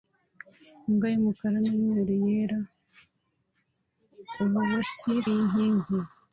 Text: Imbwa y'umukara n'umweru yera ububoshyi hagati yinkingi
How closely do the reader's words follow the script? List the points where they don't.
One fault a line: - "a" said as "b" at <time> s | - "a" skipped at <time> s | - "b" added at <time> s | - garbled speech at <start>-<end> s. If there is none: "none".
- "hagati" skipped at 5.1 s